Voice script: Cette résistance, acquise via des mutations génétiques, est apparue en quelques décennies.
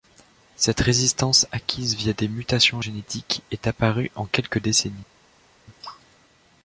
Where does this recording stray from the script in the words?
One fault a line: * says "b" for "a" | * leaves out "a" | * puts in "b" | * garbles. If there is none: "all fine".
all fine